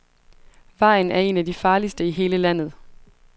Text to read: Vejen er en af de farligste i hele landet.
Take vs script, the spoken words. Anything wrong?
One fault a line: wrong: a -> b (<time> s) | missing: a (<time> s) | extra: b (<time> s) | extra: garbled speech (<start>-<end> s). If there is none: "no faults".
no faults